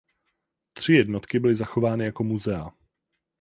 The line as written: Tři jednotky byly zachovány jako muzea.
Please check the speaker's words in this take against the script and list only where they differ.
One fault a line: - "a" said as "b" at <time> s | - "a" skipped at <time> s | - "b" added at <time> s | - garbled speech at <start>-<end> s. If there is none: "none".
none